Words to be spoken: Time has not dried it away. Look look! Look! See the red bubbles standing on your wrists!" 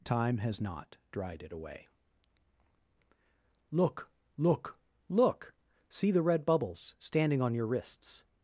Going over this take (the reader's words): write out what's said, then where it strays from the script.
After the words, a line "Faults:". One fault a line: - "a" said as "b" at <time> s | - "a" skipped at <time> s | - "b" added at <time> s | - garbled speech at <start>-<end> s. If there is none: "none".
Time has not dried it away. Look look! Look! See the red bubbles standing on your wrists!"
Faults:
none